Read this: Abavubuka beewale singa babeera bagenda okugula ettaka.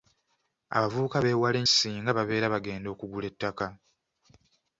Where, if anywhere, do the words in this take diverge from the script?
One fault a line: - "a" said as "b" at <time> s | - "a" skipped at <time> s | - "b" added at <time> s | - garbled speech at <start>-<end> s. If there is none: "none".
none